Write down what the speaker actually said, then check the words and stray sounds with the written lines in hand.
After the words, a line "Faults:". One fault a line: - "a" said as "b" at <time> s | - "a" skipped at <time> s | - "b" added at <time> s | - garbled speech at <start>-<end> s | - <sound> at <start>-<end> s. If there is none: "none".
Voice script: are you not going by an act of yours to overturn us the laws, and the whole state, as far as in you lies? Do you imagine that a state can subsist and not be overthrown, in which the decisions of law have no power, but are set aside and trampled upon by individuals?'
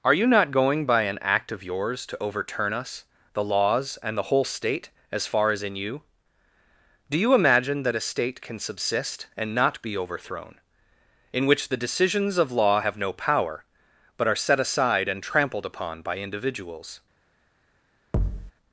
are you not going by an act of yours to overturn us the laws, and the whole state, as far as in you? Do you imagine that a state can subsist and not be overthrown, in which the decisions of law have no power, but are set aside and trampled upon by individuals?'
Faults:
- "lies" skipped at 6.0 s
- thud at 18.1-18.5 s